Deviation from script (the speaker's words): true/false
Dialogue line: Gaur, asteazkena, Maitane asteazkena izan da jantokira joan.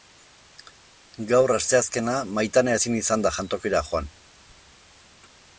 true